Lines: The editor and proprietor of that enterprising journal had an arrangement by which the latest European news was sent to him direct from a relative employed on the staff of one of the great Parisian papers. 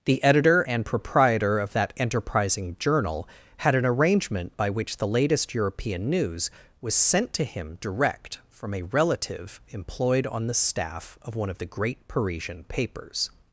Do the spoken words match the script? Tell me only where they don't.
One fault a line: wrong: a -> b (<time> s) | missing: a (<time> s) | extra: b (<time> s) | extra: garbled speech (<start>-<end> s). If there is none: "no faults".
no faults